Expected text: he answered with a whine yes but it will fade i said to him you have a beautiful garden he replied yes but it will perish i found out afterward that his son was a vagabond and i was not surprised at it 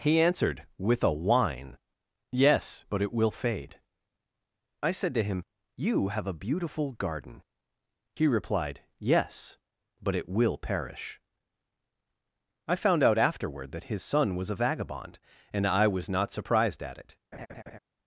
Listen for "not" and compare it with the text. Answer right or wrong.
right